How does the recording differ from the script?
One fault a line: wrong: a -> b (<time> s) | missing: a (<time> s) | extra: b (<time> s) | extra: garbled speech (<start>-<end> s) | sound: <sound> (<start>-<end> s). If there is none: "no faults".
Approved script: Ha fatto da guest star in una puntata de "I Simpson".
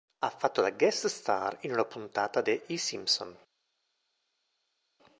no faults